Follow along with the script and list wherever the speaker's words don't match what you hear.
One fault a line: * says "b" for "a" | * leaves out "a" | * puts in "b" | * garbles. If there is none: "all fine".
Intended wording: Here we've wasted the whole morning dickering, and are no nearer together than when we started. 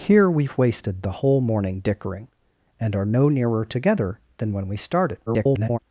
* garbles